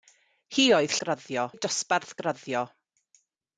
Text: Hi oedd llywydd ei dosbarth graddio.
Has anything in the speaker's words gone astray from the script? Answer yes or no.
yes